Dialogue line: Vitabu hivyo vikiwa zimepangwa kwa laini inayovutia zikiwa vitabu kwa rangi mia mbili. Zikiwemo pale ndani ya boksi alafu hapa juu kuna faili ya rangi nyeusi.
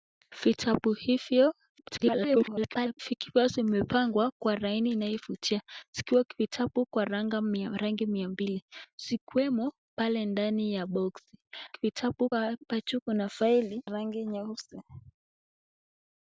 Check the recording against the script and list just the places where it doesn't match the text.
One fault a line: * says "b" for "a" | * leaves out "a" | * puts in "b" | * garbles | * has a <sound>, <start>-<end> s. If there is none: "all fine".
* garbles
* says "vitabu" for "alafu"
* leaves out "ya"